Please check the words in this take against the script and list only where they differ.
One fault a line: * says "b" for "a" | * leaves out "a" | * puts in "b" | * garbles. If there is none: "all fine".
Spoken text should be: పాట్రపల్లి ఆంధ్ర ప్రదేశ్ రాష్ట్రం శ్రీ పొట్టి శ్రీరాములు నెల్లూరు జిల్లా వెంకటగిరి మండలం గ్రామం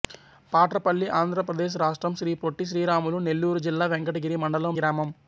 all fine